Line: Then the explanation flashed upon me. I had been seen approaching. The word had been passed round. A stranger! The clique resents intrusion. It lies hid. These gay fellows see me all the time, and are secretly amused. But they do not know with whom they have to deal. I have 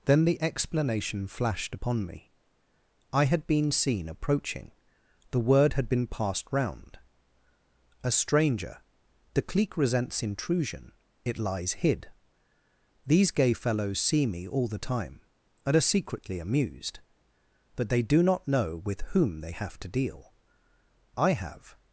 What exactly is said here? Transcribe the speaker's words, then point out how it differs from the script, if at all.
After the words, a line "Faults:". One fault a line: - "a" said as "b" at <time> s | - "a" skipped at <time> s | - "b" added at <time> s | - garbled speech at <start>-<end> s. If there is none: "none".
Then the explanation flashed upon me. I had been seen approaching. The word had been passed round. A stranger! The clique resents intrusion. It lies hid. These gay fellows see me all the time, and are secretly amused. But they do not know with whom they have to deal. I have
Faults:
none